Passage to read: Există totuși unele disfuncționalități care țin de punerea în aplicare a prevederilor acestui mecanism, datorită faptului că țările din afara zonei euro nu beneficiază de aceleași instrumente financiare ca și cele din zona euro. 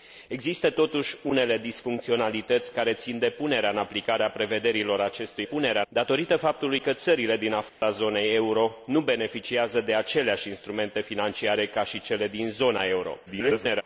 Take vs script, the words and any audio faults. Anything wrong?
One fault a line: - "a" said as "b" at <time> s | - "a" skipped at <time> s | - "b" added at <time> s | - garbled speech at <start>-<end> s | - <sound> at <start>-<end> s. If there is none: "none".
- "mecanism" said as "punerea" at 5.4 s
- dropout at 7.7-7.8 s
- garbled speech at 13.3-13.8 s